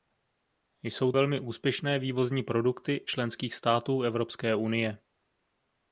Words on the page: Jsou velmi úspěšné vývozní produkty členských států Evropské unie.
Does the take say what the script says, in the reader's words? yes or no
yes